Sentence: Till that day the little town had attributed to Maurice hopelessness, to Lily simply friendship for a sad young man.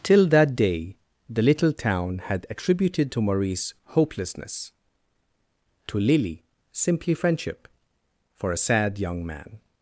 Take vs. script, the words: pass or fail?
pass